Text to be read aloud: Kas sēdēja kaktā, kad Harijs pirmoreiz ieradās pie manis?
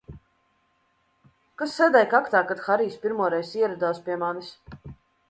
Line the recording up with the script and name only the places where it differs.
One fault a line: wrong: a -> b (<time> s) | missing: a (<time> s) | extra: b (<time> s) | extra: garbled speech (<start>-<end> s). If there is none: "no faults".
no faults